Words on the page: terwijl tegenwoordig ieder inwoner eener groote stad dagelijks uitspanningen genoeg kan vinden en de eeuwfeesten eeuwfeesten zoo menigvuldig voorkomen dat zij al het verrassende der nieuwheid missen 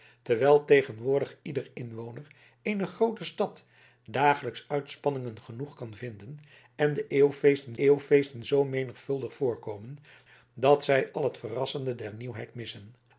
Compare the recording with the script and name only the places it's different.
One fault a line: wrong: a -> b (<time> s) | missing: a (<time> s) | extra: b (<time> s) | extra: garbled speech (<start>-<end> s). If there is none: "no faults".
no faults